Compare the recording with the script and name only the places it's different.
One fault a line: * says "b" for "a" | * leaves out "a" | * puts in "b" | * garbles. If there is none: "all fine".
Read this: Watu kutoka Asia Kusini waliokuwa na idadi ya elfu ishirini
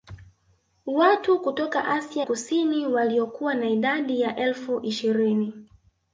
all fine